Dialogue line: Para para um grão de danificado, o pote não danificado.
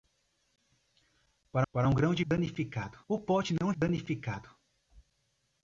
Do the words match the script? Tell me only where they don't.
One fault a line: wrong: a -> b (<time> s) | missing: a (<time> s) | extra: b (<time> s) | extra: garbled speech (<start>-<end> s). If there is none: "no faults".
no faults